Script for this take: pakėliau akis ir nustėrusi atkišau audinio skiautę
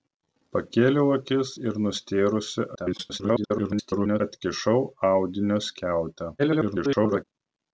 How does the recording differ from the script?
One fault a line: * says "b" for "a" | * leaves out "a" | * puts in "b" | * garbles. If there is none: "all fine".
* garbles
* garbles